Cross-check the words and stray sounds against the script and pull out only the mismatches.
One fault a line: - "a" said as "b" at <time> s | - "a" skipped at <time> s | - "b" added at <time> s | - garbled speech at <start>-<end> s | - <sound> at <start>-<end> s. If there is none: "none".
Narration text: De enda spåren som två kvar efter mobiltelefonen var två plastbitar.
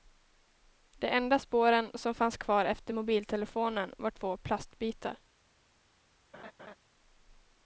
- "två" said as "fanns" at 2.1 s
- laugh at 6.3-6.8 s